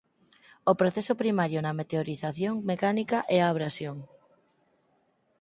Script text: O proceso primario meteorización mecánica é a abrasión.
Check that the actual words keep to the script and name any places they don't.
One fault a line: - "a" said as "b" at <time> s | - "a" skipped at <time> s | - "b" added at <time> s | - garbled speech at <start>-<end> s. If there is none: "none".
- "na" added at 1.6 s